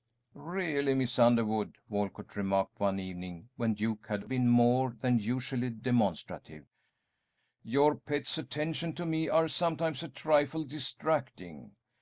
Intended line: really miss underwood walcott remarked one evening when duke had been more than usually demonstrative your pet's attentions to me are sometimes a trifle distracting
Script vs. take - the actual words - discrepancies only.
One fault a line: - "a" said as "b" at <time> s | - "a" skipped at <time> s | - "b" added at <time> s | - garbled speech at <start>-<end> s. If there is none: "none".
none